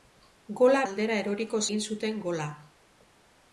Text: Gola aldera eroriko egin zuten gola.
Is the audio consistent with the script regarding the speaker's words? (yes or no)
yes